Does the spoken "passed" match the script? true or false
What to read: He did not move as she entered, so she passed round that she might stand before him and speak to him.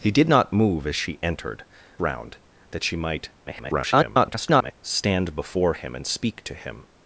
false